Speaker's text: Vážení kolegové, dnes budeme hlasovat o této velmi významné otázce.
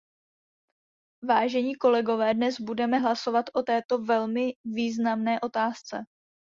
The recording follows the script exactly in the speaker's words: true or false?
true